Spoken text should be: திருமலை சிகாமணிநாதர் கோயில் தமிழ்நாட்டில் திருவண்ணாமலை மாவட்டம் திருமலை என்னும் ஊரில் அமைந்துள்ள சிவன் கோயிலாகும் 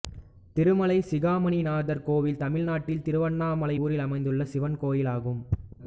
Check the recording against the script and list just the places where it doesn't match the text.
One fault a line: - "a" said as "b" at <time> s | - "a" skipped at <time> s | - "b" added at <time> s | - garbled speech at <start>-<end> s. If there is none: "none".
- "மாவட்டம் திருமலை என்னும்" skipped at 3.8 s